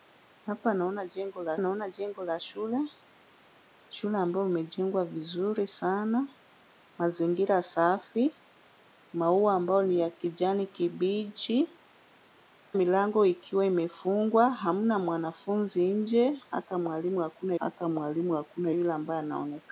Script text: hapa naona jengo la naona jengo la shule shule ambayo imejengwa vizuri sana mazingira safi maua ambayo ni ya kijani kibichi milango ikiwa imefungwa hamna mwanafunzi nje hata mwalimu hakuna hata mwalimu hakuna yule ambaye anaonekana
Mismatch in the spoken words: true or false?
false